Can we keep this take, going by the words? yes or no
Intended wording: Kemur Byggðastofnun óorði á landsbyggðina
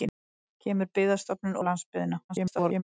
no